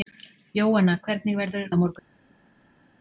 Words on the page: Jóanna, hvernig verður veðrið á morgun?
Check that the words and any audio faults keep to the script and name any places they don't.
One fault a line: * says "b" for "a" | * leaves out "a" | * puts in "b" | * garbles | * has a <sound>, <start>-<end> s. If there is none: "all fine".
* leaves out "veðrið"